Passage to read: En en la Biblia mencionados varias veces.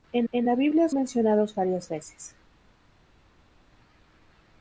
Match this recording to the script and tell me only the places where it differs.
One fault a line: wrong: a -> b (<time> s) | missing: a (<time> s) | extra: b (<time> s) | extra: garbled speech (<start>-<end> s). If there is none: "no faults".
no faults